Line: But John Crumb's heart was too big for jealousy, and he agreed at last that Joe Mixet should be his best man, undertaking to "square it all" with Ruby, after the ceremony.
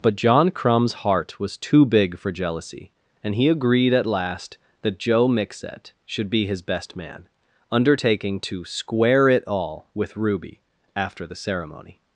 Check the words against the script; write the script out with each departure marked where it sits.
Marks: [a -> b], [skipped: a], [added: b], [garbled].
But John Crumb's heart was too big for jealousy, and he agreed at last that Joe Mixet should be his best man, undertaking to "square it all" with Ruby, after the ceremony.